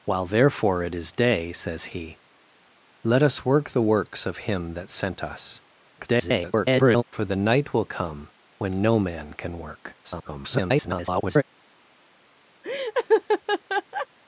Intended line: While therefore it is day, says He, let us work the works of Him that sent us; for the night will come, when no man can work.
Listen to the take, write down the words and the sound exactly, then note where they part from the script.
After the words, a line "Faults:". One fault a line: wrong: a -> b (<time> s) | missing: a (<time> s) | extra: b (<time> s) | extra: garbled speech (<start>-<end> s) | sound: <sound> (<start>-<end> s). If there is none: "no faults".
While therefore it is day, says He, let us work the works of Him that sent us; [garbled] for the night will come, when no man can work. [garbled]
Faults:
extra: garbled speech (6.0-7.0 s)
extra: garbled speech (10.0-11.4 s)
sound: laugh (12.6-14.1 s)